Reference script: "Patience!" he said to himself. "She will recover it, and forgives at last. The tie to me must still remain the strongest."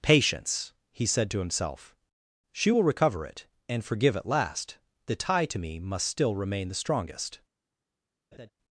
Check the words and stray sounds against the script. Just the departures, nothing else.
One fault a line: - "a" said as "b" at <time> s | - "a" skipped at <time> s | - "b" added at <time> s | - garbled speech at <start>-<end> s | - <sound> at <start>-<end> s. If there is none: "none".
- "forgives" said as "forgive" at 3.8 s
- laugh at 8.3-8.5 s